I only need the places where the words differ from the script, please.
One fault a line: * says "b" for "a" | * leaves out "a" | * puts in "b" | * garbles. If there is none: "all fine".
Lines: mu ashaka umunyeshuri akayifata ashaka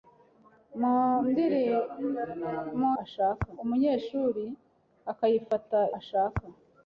all fine